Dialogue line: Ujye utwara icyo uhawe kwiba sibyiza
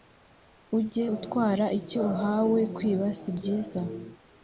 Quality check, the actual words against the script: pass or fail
pass